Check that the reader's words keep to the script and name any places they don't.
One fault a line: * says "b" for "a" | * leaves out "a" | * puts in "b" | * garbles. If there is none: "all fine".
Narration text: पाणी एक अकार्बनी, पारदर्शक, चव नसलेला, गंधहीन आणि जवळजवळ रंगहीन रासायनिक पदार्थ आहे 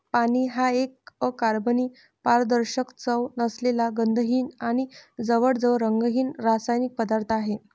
* puts in "हा"